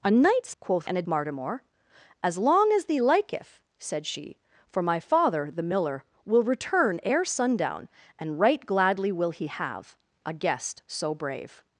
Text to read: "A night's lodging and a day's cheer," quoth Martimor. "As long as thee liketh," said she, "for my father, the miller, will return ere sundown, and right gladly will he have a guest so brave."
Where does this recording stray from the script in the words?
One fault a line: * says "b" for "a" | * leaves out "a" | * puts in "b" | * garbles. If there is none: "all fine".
* says "quoth" for "lodging"
* leaves out "day's cheer quoth"